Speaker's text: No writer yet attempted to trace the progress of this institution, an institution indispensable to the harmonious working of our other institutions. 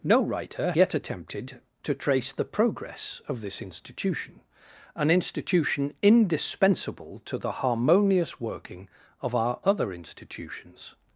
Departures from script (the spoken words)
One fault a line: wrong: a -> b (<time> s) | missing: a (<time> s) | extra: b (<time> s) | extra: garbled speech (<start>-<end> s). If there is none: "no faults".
no faults